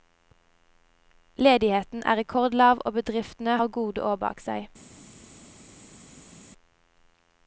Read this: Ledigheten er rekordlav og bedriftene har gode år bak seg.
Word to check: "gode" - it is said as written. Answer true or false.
true